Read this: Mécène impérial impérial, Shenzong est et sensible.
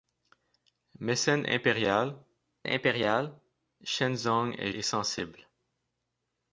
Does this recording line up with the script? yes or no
yes